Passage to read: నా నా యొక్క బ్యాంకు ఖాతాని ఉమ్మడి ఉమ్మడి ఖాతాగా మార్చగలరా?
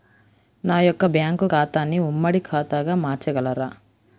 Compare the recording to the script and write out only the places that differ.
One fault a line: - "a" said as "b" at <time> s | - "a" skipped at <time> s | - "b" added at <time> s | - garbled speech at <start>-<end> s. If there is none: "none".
- "నా" skipped at 0.8 s
- "ఉమ్మడి" skipped at 2.4 s